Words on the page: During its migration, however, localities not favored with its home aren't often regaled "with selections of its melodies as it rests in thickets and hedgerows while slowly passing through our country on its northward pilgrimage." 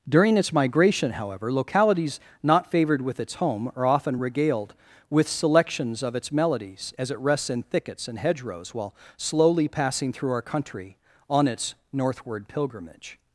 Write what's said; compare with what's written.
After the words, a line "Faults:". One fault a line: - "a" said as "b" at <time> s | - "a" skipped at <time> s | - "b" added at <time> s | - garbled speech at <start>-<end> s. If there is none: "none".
During its migration, however, localities not favored with its home are often regaled "with selections of its melodies as it rests in thickets and hedgerows while slowly passing through our country on its northward pilgrimage."
Faults:
- "aren't" said as "are" at 3.7 s